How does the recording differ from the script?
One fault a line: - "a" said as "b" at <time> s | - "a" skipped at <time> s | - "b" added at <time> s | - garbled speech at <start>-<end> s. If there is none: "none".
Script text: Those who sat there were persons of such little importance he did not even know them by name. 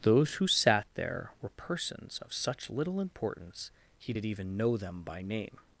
- "not" skipped at 4.2 s